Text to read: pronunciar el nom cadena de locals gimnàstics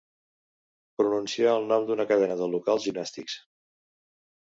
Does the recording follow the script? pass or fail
fail